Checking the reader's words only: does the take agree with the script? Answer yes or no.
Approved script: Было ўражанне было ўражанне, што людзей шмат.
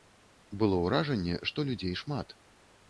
no